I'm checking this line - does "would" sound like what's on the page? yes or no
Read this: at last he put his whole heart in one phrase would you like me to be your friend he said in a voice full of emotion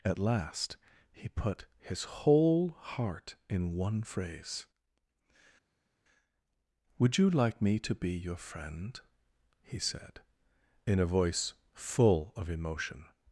yes